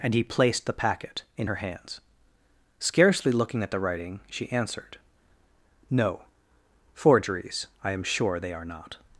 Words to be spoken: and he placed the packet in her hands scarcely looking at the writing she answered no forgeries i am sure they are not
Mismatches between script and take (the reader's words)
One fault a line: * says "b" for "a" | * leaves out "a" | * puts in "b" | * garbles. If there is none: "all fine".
all fine